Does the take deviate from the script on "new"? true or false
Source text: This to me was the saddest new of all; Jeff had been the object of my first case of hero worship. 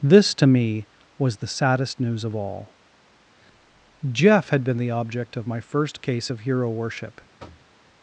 true